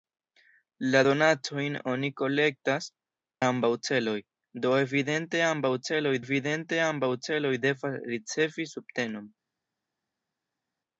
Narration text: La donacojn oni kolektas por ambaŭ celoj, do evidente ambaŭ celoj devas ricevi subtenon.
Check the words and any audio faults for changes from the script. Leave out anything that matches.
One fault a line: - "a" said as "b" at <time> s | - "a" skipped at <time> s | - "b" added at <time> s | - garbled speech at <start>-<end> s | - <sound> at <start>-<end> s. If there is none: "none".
- "por" skipped at 2.9 s
- "evidente ambaŭ celoj" added at 6.3 s